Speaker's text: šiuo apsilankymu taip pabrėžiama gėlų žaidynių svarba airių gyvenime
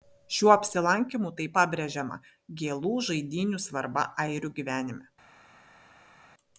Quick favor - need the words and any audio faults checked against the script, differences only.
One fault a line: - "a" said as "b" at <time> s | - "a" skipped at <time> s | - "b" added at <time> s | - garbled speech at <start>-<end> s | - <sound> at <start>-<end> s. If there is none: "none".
none